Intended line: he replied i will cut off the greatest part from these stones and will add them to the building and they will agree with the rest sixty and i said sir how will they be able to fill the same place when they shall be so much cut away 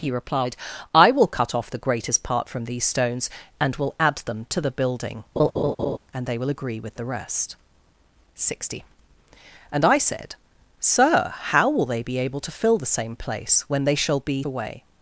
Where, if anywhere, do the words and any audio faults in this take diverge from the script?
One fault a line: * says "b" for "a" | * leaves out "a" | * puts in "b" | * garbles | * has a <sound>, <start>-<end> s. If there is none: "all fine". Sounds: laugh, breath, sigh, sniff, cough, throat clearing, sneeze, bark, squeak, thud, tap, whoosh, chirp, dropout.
* has a laugh, 5.4-6.0 s
* leaves out "so much cut"